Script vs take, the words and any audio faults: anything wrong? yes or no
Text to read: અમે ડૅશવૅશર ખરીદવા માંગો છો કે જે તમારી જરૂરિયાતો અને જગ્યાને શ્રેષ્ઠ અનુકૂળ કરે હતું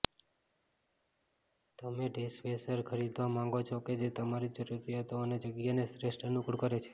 yes